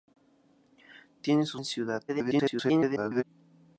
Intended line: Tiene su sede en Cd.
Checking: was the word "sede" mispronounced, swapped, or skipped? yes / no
yes